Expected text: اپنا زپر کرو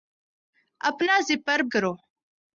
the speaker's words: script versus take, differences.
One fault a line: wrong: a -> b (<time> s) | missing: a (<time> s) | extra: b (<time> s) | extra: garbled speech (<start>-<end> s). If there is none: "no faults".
no faults